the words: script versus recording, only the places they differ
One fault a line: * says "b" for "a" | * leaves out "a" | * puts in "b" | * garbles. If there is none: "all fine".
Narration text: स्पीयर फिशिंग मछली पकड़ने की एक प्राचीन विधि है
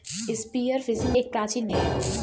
* leaves out "मछली पकड़ने की"
* leaves out "विधि"